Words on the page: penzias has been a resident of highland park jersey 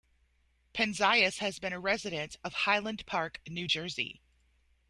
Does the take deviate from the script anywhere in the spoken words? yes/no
yes